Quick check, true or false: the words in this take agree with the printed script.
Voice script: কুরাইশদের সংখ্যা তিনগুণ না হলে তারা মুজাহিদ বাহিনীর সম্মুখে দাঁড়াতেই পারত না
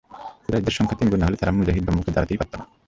false